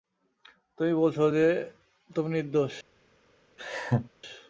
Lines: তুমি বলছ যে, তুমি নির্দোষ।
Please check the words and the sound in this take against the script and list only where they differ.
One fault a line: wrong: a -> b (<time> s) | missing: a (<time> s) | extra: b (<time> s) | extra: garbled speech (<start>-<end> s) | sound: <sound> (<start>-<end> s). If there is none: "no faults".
sound: laugh (3.6-4.1 s)